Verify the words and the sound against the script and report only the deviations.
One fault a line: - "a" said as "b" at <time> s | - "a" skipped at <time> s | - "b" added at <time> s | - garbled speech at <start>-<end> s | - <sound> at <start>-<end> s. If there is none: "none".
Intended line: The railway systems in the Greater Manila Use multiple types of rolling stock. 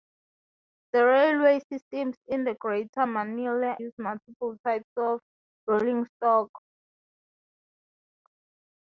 none